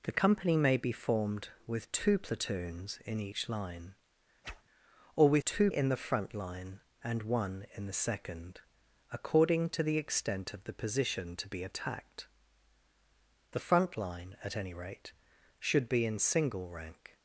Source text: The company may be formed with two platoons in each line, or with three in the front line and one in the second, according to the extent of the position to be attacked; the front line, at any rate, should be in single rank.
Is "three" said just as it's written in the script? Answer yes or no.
no